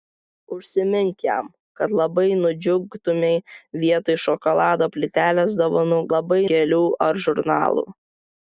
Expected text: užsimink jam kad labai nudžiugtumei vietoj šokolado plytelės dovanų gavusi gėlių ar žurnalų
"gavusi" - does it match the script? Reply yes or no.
no